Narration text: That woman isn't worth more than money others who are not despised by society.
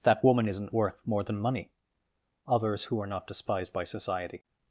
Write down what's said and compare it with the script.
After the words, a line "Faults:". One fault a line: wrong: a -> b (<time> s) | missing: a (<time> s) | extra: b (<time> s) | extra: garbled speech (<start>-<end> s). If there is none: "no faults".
That woman isn't worth more than money others who are not despised by society.
Faults:
no faults